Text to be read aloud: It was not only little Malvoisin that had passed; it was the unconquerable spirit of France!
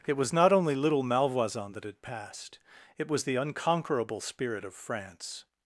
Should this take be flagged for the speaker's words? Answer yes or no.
no